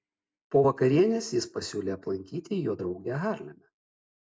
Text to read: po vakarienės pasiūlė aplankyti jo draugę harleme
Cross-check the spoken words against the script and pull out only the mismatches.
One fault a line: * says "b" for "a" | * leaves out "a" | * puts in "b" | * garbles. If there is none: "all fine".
* puts in "jis"